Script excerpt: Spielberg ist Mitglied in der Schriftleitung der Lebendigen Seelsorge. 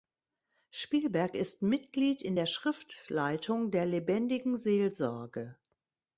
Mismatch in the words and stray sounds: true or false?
false